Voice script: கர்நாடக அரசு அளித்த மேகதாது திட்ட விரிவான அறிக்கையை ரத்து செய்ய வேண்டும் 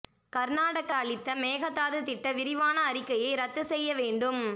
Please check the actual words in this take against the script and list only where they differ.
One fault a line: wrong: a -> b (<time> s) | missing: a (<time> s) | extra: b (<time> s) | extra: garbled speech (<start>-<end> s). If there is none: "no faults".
missing: அரசு (0.9 s)